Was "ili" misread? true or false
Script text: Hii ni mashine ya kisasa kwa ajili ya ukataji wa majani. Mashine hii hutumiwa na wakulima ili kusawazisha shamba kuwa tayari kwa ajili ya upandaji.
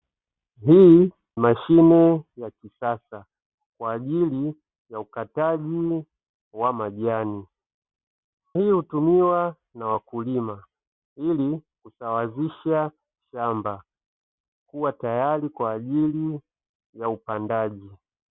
false